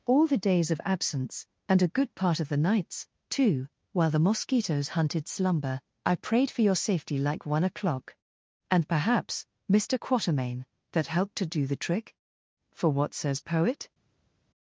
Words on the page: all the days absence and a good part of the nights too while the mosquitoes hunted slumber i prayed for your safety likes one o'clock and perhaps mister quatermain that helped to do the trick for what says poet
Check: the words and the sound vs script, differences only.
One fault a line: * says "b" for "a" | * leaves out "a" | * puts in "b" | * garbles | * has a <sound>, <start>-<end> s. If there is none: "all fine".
* puts in "of"
* says "like" for "likes"